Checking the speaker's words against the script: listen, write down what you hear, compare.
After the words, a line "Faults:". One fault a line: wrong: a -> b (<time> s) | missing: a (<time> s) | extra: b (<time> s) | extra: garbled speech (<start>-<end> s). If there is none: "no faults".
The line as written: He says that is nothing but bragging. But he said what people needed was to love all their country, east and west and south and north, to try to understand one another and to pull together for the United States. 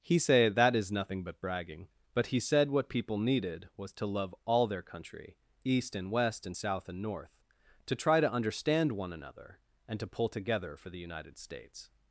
He say that is nothing but bragging. But he said what people needed was to love all their country, east and west and south and north, to try to understand one another and to pull together for the United States.
Faults:
wrong: says -> say (0.2 s)